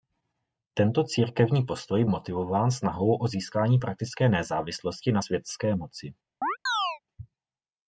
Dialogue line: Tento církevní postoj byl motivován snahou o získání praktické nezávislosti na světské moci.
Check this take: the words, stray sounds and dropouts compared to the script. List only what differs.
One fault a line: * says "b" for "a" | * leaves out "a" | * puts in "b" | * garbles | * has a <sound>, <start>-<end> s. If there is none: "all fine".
* leaves out "byl"
* has a chirp, 6.4-7.0 s